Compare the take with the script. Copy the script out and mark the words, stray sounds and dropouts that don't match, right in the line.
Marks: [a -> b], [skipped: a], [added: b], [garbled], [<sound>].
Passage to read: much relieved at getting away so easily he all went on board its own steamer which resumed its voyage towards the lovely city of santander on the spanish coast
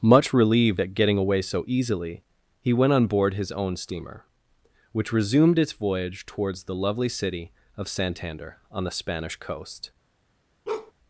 much relieved at getting away so easily he [skipped: all] went on board [its -> his] own steamer which resumed its voyage towards the lovely city of santander on the spanish coast [bark]